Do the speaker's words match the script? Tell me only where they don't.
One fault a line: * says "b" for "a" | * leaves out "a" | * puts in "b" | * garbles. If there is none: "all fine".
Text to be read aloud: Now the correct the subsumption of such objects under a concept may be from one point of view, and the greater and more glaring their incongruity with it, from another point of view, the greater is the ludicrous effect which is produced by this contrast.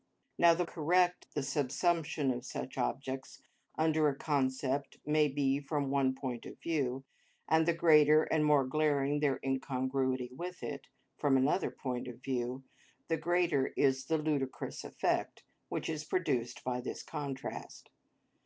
all fine